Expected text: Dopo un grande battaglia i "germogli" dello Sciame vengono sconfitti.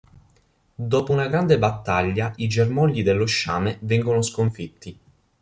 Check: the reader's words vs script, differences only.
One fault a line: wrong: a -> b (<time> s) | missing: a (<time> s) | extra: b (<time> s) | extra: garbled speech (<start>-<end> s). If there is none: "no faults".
wrong: un -> una (1.1 s)